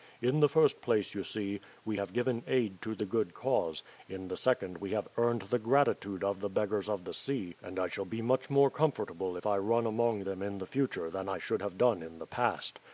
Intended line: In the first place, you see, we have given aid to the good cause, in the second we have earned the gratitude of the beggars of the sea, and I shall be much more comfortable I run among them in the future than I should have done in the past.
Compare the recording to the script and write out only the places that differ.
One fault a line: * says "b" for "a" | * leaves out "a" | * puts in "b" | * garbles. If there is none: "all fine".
* puts in "if"